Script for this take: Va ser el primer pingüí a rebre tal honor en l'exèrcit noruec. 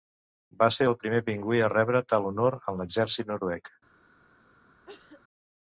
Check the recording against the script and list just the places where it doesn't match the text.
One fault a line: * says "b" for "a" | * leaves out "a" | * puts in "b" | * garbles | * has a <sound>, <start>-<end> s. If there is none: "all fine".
* has a cough, 4.9-5.2 s